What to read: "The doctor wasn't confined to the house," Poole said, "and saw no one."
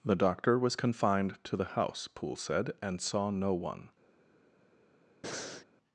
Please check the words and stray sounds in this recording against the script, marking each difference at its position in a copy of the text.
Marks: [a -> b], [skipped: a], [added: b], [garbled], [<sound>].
"The doctor [wasn't -> was] confined to the house," Poole said, "and saw no one." [breath]